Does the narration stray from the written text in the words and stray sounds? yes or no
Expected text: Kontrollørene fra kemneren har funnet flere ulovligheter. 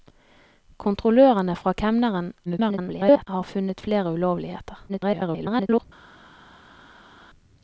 yes